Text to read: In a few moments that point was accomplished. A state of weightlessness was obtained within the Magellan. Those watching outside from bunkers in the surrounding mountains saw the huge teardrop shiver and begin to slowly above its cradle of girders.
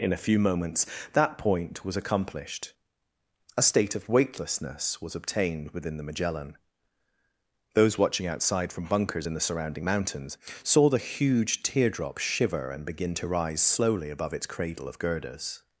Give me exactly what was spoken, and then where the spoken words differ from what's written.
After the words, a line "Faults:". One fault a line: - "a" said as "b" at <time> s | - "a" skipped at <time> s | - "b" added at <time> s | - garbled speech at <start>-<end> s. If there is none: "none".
In a few moments that point was accomplished. A state of weightlessness was obtained within the Magellan. Those watching outside from bunkers in the surrounding mountains saw the huge teardrop shiver and begin to rise slowly above its cradle of girders.
Faults:
- "rise" added at 13.3 s